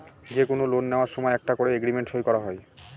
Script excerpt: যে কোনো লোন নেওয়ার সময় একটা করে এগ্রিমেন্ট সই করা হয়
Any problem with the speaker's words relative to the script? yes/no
no